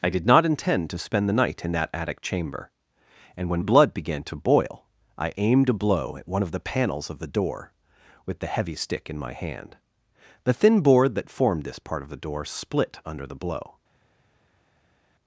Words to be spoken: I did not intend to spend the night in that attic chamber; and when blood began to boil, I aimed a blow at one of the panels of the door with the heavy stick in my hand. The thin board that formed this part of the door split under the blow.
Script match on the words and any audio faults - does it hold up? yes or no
yes